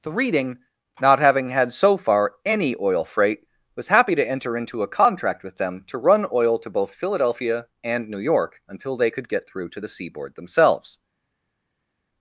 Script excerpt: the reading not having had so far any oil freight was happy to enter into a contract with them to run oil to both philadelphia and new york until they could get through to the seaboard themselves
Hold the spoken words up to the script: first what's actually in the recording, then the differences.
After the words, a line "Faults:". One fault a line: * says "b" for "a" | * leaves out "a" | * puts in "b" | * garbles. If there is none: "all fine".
the reading not having had so far any oil freight was happy to enter into a contract with them to run oil to both philadelphia and new york until they could get through to the seaboard themselves
Faults:
all fine